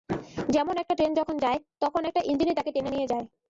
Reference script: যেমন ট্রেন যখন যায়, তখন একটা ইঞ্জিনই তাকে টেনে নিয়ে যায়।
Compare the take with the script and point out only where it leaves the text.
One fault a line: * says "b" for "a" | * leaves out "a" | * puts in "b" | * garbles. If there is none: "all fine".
* puts in "একটা"